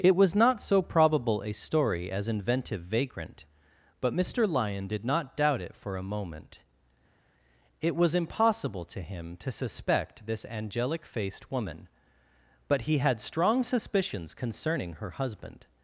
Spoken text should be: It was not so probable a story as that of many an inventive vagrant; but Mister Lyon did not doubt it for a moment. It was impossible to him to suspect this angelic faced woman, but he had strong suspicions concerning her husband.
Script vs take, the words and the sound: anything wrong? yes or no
yes